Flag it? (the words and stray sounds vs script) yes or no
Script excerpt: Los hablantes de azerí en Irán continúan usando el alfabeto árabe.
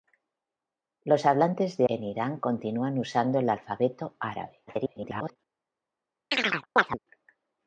yes